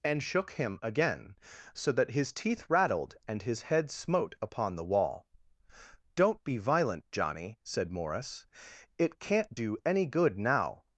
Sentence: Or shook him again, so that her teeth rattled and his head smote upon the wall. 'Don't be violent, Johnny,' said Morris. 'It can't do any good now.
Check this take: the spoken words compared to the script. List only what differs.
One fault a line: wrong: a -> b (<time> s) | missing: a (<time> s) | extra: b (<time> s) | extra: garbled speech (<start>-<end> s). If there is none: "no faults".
wrong: Or -> And (0.0 s)
wrong: her -> his (2.1 s)